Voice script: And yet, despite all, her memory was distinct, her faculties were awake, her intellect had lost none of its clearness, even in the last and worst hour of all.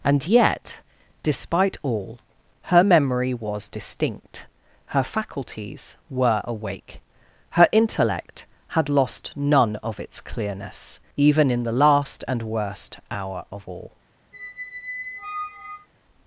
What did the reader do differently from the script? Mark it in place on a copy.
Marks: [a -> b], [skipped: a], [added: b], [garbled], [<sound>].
And yet, despite all, her memory was distinct, her faculties were awake, her intellect had lost none of its clearness, even in the last and worst hour of all. [squeak]